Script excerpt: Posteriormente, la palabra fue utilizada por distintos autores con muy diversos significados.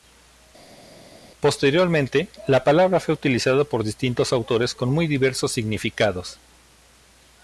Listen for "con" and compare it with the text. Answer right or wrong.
right